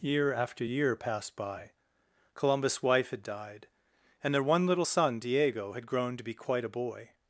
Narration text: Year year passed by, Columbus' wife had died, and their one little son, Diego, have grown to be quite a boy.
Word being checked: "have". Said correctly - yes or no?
no